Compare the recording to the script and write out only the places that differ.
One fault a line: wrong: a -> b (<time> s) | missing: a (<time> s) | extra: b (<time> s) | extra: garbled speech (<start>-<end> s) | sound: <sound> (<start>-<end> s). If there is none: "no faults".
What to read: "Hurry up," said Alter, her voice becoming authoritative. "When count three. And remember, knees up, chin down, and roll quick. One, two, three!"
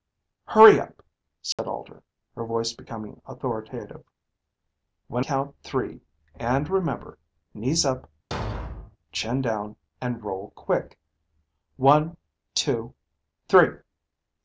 sound: dropout (1.5-1.6 s)
sound: thud (8.3-9.0 s)